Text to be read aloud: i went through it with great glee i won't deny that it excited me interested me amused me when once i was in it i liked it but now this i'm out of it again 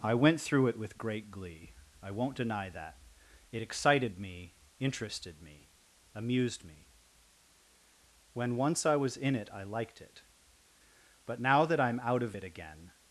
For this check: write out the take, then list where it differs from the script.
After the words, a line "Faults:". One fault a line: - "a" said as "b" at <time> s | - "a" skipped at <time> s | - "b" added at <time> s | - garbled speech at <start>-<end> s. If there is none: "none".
i went through it with great glee i won't deny that it excited me interested me amused me when once i was in it i liked it but now that i'm out of it again
Faults:
- "this" said as "that" at 11.7 s